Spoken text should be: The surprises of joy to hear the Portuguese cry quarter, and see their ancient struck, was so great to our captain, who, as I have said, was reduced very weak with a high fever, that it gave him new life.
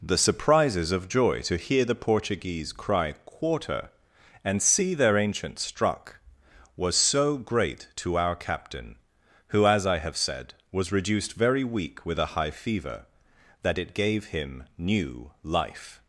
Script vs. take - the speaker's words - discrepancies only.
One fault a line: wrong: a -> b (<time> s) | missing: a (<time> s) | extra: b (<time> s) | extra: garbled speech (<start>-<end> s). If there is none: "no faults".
no faults